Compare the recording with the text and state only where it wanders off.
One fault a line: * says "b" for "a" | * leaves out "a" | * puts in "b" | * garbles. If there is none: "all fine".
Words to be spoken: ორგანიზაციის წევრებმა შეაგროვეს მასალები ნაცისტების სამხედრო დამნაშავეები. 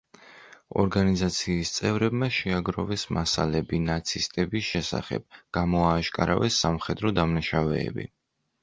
* puts in "შესახებ გამოააშკარავეს"